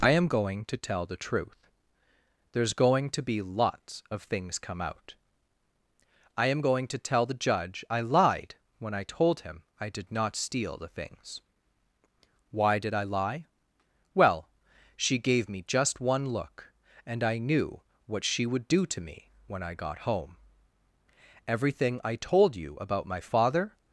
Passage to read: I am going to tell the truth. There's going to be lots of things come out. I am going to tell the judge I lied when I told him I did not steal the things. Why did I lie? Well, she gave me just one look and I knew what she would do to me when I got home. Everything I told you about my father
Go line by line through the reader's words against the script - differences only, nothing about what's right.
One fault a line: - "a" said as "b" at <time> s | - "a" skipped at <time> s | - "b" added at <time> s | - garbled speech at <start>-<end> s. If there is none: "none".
none